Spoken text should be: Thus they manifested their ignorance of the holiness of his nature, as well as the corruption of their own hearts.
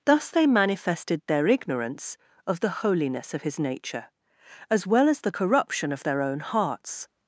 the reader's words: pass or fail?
pass